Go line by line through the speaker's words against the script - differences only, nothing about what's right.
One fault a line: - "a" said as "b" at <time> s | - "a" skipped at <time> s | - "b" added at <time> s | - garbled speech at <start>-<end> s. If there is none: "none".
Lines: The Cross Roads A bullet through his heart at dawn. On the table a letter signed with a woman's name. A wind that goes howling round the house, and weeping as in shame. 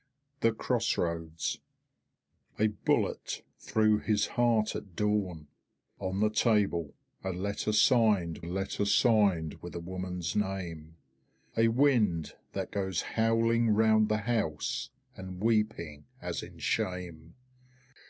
- "letter signed" added at 8.4 s